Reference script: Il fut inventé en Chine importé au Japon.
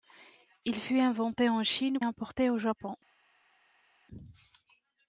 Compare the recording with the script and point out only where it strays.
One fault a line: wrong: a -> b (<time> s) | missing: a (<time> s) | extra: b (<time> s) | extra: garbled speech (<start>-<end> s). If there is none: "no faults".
no faults